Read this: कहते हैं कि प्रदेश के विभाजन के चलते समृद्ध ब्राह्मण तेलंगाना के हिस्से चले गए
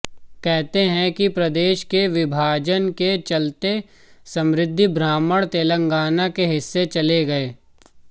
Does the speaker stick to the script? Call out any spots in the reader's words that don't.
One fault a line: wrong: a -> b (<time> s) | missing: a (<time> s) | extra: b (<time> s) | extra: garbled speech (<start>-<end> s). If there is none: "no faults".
no faults